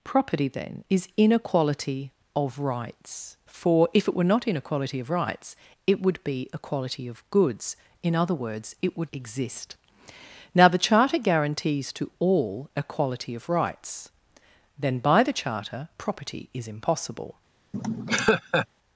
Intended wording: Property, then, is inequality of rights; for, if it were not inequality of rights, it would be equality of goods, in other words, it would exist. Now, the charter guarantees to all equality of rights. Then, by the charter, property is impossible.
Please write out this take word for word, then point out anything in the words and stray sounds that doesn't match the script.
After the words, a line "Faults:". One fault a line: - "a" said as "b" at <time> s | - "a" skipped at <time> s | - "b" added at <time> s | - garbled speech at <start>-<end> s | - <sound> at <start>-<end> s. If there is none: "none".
Property, then, is inequality of rights; for, if it were not inequality of rights, it would be equality of goods, in other words, it would exist. Now, the charter guarantees to all equality of rights. Then, by the charter, property is impossible.
Faults:
- laugh at 17.7-18.7 s